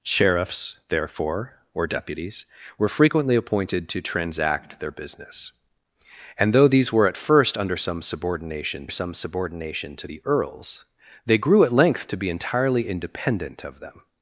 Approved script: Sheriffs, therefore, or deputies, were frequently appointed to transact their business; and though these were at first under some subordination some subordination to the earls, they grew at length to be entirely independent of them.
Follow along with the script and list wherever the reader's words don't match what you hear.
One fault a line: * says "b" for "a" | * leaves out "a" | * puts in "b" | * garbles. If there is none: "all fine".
all fine